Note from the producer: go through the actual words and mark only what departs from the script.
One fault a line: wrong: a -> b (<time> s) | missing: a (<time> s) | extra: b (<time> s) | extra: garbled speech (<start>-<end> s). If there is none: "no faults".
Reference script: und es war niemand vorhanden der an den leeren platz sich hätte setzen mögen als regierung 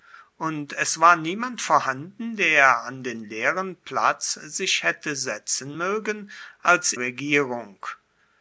no faults